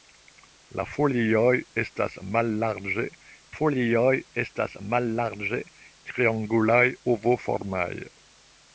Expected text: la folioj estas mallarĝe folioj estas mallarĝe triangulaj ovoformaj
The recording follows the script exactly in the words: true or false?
true